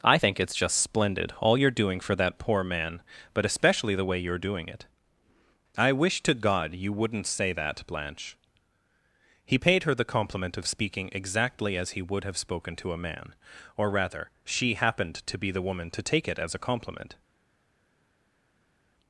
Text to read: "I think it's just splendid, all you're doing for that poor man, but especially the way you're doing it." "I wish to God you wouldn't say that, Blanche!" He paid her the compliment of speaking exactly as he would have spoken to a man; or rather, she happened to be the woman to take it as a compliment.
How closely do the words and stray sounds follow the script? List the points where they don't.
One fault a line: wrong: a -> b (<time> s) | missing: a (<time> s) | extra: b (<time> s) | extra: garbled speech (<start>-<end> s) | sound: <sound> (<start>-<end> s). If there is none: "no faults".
no faults